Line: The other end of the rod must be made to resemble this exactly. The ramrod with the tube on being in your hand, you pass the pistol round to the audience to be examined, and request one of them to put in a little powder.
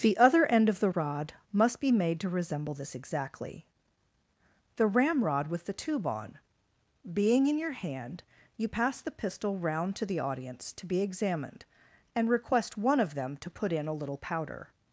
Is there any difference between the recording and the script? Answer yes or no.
no